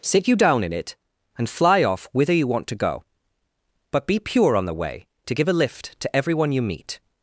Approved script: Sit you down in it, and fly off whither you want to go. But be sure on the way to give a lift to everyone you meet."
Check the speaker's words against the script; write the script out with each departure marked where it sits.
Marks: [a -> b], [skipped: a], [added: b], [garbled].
Sit you down in it, and fly off whither you want to go. But be [sure -> pure] on the way to give a lift to everyone you meet."